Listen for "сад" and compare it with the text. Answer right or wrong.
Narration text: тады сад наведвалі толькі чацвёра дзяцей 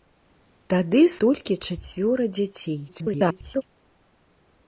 wrong